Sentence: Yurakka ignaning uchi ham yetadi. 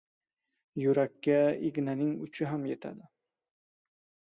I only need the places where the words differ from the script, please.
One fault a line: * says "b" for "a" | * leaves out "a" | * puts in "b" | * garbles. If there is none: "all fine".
all fine